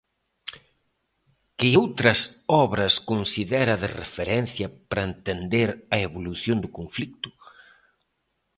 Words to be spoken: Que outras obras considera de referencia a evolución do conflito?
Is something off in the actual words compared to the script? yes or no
yes